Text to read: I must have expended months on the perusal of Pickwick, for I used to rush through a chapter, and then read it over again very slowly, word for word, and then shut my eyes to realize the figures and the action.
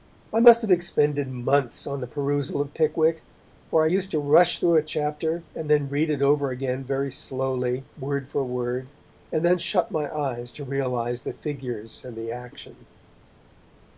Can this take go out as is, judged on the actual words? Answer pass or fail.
pass